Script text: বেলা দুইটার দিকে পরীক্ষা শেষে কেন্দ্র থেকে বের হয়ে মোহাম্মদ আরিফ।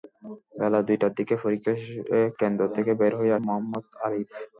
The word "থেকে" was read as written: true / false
true